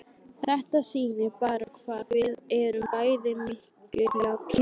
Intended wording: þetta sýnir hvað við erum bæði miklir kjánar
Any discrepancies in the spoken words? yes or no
yes